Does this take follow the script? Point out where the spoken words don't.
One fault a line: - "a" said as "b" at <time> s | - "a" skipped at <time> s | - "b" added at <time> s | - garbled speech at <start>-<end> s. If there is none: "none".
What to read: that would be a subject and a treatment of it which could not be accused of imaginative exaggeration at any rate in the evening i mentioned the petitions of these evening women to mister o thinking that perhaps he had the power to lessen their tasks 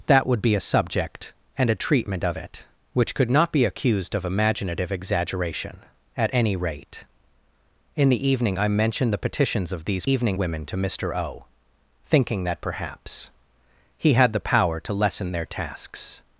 none